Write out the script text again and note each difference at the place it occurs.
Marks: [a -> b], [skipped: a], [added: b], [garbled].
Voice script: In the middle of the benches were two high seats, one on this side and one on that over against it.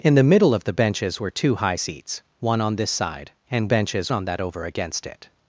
In the middle of the benches were two high seats, one on this side and [one -> benches] on that over against it.